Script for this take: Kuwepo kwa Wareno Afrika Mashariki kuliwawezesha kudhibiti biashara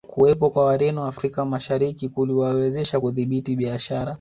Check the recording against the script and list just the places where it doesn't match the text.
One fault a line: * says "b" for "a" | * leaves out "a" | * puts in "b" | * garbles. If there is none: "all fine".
all fine